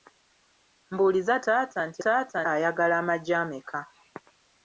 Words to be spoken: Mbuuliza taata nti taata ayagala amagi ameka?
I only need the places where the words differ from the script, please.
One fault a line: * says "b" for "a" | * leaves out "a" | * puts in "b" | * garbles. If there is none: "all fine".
all fine